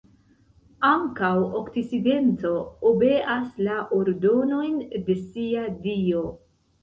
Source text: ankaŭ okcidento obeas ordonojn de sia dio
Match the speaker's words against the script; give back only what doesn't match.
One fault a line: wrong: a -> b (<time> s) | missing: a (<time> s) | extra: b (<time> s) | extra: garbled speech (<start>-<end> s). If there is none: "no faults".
extra: la (3.7 s)